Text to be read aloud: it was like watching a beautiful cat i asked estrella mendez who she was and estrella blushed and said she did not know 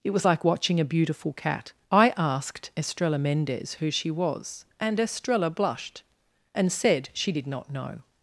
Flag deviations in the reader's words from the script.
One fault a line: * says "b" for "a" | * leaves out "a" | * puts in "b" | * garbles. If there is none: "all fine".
all fine